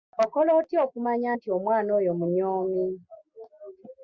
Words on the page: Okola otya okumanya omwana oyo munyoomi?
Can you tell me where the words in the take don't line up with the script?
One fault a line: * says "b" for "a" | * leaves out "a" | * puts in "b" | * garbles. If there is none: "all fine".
* puts in "nti"